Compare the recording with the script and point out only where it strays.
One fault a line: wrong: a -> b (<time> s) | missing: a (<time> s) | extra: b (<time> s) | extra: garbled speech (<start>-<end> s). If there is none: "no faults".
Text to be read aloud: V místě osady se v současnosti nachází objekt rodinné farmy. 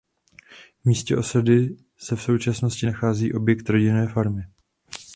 no faults